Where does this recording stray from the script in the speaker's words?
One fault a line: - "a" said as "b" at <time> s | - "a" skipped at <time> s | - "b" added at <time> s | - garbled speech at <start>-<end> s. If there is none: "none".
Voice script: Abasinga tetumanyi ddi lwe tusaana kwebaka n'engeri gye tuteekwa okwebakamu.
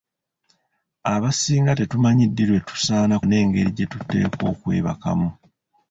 - "kwebaka" skipped at 3.1 s